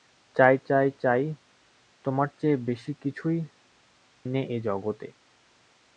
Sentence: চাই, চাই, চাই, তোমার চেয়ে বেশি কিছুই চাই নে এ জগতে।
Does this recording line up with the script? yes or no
no